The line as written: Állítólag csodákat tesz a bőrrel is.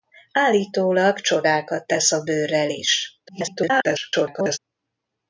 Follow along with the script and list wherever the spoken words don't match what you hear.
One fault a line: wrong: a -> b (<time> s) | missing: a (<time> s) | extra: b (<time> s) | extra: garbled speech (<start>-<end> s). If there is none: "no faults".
extra: garbled speech (3.3-4.6 s)